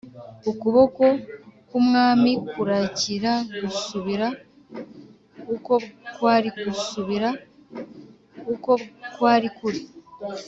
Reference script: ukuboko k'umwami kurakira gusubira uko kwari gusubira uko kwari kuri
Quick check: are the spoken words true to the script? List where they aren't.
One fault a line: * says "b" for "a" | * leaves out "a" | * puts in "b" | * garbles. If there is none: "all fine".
all fine